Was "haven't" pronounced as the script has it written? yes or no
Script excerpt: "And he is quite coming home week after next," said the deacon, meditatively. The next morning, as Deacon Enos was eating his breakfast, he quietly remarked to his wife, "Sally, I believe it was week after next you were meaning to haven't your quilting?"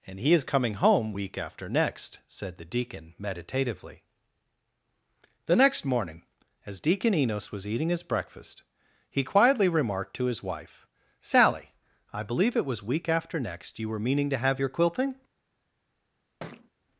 no